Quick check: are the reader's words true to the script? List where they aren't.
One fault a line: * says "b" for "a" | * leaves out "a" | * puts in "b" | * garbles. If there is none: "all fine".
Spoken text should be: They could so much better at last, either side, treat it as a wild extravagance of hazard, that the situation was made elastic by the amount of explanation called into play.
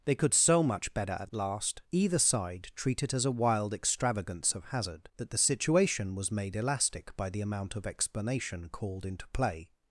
all fine